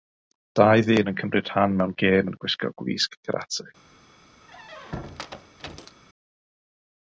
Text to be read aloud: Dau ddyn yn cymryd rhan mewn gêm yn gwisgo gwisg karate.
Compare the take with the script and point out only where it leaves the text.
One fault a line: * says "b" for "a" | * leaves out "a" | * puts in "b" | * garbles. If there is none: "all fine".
all fine